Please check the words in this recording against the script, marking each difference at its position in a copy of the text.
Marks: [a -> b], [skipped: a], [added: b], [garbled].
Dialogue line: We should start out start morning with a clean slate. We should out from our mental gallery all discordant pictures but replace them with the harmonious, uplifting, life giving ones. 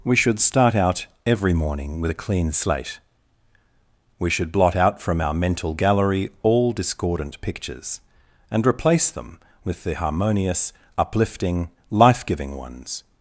We should start out [start -> every] morning with a clean slate. We should [added: blot] out from our mental gallery all discordant pictures [but -> and] replace them with the harmonious, uplifting, life giving ones.